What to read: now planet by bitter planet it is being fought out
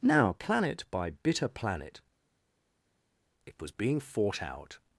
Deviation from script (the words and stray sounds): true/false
true